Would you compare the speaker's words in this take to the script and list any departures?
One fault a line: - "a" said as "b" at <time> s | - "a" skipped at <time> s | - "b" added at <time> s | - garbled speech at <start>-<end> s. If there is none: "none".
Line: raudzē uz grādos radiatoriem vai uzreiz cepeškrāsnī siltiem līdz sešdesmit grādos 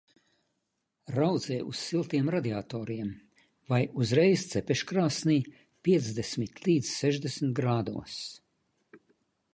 - "grādos" said as "siltiem" at 1.9 s
- "siltiem" said as "piecdesmit" at 5.8 s